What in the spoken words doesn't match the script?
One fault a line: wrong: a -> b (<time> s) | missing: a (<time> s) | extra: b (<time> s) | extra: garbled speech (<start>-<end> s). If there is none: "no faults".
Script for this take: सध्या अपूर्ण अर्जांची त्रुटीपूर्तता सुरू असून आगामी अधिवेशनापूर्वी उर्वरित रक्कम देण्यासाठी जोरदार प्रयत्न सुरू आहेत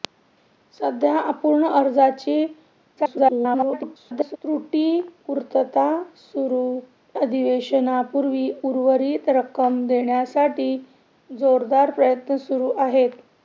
extra: garbled speech (3.0-4.4 s)
missing: असून आगामी (6.8 s)